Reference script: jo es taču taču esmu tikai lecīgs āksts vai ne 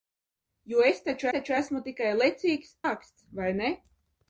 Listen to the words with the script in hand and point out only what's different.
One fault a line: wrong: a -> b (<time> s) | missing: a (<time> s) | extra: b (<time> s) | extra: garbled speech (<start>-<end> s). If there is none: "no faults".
no faults